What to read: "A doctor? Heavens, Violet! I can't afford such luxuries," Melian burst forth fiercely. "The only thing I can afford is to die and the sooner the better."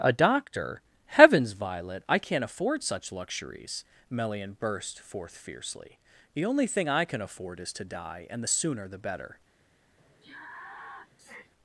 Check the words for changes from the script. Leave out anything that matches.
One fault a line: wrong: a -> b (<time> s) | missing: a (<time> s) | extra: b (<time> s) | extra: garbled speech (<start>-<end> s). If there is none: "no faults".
no faults